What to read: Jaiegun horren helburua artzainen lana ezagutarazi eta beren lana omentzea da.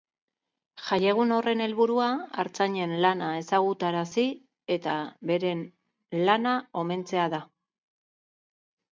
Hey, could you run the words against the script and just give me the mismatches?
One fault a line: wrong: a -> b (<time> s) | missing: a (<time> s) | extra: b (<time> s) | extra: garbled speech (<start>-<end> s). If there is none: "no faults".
no faults